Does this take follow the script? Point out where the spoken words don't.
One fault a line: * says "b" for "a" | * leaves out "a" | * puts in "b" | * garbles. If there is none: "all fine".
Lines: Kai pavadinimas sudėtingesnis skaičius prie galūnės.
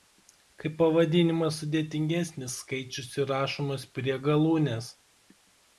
* puts in "įrašomas"